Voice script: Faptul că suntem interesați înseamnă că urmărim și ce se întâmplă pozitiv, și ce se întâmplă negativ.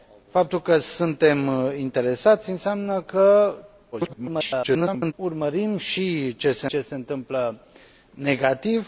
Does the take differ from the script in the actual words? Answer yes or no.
yes